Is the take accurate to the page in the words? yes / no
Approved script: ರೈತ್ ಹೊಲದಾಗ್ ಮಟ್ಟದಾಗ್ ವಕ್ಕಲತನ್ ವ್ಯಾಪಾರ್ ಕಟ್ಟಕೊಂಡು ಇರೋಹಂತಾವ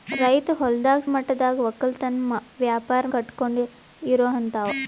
yes